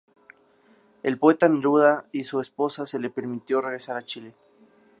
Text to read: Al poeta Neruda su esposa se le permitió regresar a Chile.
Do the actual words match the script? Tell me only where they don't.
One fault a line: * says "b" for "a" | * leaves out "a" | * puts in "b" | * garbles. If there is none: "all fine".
* puts in "y"